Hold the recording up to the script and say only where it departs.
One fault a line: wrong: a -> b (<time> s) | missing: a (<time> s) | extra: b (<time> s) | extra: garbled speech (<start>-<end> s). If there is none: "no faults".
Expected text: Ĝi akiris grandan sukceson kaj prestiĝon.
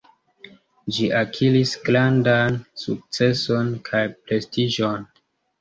no faults